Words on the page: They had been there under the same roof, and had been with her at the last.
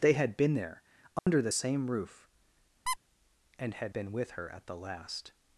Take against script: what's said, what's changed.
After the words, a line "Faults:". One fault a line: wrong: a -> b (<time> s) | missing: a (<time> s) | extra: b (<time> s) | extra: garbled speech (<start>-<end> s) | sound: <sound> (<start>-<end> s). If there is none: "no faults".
They had been there under the same roof, and had been with her at the last.
Faults:
sound: dropout (1.2-1.3 s)
sound: squeak (2.9-3.0 s)